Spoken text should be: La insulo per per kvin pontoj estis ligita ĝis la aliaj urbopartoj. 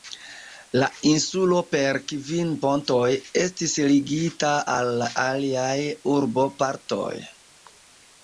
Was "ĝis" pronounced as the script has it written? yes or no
no